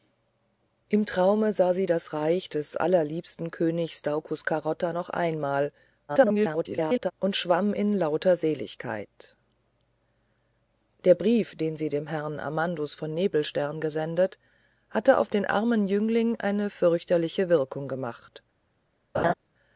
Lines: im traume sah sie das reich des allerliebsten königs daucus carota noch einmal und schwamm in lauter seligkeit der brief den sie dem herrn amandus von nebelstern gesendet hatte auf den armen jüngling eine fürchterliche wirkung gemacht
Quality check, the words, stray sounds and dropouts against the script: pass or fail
fail